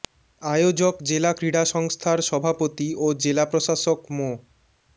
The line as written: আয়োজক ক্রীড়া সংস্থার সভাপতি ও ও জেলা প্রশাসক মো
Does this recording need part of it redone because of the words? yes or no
yes